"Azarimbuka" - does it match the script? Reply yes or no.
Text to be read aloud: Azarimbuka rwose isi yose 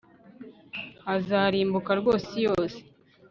yes